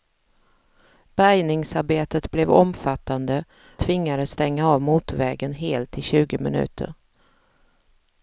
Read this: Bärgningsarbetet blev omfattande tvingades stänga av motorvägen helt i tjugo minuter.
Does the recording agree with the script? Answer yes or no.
yes